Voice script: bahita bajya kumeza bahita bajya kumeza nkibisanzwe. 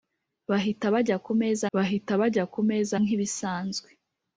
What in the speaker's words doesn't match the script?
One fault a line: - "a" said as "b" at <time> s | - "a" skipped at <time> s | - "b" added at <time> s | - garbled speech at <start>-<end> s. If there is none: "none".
none